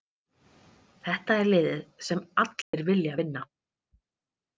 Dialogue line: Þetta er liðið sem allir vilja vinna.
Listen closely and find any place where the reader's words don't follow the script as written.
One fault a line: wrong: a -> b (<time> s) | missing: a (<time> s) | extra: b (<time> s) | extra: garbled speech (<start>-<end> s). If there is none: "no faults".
no faults